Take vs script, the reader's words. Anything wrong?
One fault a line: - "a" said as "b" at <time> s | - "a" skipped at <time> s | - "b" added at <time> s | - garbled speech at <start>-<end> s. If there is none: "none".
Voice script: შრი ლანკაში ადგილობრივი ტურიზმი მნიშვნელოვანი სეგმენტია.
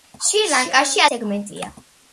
- "ადგილობრივი ტურიზმი მნიშვნელოვანი" skipped at 1.0 s